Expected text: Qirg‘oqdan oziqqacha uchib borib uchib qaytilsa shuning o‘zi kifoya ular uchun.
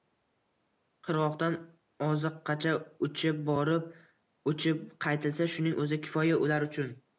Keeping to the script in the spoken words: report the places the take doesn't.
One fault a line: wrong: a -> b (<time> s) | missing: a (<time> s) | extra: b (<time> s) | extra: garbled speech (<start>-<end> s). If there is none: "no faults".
no faults